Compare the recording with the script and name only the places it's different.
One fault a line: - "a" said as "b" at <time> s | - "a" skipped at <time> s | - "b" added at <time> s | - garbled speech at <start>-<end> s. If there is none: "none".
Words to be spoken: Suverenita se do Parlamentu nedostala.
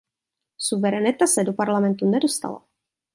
none